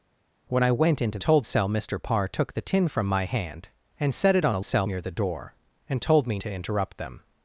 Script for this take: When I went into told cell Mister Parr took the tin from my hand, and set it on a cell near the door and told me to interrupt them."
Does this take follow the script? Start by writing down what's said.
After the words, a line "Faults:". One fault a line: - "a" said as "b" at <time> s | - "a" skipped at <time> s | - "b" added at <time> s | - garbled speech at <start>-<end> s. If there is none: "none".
When I went into told cell Mister Parr took the tin from my hand, and set it on a cell near the door and told me to interrupt them."
Faults:
none